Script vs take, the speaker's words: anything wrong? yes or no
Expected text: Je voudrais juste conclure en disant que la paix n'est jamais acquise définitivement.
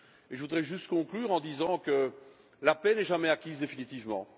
no